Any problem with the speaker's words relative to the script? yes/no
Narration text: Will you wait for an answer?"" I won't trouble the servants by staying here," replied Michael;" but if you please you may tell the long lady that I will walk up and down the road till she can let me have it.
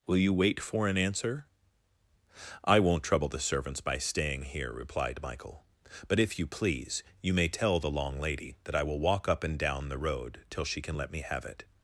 no